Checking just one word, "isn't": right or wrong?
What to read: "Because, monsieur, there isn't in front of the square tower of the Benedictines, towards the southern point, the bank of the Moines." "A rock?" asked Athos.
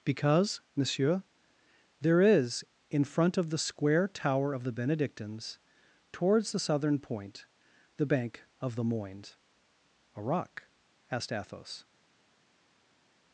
wrong